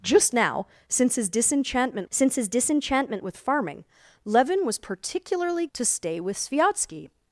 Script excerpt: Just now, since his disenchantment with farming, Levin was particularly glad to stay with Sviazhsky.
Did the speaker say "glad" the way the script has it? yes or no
no